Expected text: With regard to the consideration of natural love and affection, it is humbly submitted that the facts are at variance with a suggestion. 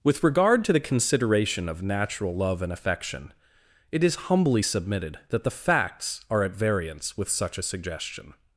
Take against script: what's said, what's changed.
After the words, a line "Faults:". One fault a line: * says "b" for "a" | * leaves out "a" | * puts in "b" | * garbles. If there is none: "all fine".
With regard to the consideration of natural love and affection, it is humbly submitted that the facts are at variance with such a suggestion.
Faults:
* puts in "such"